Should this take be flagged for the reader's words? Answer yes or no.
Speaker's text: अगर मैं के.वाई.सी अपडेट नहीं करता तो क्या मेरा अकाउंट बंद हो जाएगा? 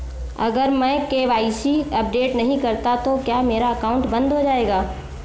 no